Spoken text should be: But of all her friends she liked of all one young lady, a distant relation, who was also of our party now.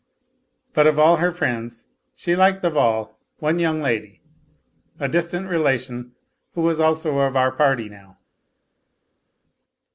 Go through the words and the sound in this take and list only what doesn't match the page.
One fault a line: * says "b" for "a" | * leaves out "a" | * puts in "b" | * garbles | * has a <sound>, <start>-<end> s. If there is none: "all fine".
all fine